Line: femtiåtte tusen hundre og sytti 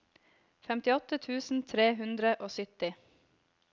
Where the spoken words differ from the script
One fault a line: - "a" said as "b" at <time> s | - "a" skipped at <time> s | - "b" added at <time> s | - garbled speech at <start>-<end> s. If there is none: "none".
- "tre" added at 1.7 s